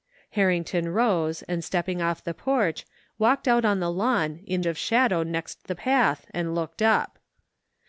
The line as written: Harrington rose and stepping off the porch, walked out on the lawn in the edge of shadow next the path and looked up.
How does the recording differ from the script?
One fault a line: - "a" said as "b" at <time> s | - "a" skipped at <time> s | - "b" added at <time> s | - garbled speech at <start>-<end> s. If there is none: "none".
- "the edge" skipped at 4.6 s